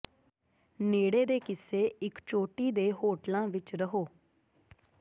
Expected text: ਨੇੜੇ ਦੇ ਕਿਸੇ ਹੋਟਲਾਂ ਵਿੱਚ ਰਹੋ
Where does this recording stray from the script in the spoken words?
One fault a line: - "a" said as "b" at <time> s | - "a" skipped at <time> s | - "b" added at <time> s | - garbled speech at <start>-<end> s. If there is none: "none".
- "ਇੱਕ ਚੋਟੀ ਦੇ" added at 2.0 s